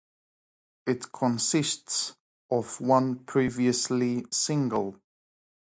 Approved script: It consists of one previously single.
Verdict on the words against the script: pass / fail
pass